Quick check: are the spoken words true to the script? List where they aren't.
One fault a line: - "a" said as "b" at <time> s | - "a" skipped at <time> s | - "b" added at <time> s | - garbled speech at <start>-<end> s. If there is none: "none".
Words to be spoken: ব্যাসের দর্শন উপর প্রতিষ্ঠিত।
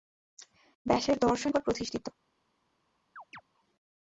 none